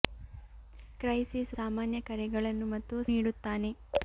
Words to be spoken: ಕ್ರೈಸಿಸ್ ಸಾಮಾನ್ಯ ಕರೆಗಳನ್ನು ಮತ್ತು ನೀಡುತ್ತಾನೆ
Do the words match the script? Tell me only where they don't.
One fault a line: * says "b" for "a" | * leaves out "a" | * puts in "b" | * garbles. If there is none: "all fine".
all fine